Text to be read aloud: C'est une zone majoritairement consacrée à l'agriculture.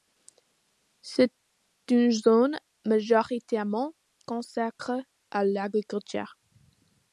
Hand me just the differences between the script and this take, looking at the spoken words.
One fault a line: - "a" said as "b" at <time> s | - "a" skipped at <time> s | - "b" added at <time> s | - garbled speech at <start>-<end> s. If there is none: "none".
none